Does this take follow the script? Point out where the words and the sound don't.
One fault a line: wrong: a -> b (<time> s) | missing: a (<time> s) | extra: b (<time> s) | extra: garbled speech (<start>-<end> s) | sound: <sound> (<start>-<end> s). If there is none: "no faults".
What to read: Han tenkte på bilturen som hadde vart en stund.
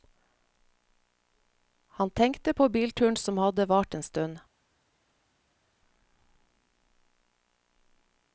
no faults